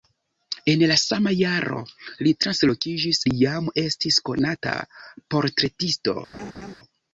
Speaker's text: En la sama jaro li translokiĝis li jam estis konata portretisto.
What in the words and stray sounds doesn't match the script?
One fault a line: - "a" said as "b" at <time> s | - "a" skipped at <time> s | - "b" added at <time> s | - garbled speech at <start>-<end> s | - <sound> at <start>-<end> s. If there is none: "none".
- laugh at 6.3-6.7 s